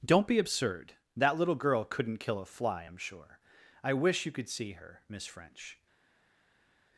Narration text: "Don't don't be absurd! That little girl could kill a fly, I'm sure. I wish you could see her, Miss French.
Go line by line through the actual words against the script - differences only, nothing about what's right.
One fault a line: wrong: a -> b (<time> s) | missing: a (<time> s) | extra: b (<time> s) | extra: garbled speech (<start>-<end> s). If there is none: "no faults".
missing: don't (0.2 s)
wrong: could -> couldn't (1.8 s)